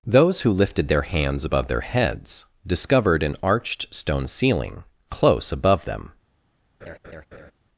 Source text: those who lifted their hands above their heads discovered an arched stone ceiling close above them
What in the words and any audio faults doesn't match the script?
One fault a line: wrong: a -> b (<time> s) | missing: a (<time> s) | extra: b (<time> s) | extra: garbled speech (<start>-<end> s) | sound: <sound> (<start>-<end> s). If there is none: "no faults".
sound: laugh (6.8-7.5 s)